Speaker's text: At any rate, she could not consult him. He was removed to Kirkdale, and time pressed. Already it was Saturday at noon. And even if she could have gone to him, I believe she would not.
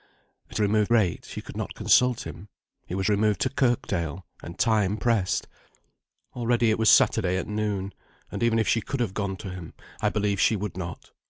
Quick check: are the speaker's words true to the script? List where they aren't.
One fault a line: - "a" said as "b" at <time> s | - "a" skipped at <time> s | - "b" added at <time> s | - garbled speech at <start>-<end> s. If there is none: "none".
- "any" said as "removed" at 0.6 s